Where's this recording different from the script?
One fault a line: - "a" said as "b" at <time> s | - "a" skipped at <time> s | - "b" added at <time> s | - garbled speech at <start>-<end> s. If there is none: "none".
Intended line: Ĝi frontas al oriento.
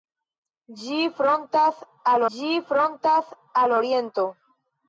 - "ĝi frontas al" added at 2.3 s